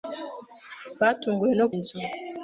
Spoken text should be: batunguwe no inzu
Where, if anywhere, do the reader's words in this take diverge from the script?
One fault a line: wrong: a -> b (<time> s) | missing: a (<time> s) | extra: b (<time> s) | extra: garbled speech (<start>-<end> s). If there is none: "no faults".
no faults